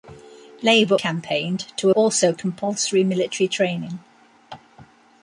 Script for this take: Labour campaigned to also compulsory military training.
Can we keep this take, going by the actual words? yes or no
yes